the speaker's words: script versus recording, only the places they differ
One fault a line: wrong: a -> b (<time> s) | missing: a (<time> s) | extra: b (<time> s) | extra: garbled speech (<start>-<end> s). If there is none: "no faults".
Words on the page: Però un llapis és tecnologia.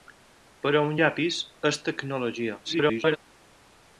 extra: garbled speech (2.6-3.2 s)